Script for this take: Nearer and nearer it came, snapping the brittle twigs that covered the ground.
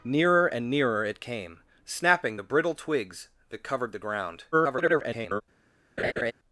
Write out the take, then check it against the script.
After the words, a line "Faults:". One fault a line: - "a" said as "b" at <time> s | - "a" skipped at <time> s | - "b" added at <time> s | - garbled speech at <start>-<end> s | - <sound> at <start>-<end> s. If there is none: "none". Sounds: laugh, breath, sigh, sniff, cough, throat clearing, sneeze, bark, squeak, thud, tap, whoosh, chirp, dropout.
Nearer and nearer it came, snapping the brittle twigs that covered the ground. [garbled]
Faults:
- garbled speech at 4.5-5.4 s
- laugh at 6.0-6.3 s